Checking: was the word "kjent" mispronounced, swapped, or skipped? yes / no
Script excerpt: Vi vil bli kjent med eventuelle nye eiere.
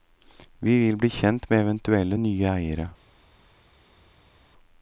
no